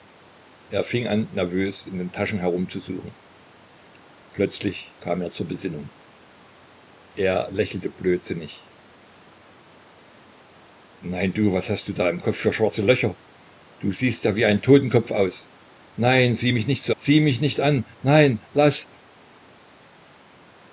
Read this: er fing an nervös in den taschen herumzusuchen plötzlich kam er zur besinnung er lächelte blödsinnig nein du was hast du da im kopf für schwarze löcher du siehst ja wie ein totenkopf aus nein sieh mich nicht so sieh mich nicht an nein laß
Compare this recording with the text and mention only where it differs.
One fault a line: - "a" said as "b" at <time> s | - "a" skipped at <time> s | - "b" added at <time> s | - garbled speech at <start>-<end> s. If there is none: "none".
none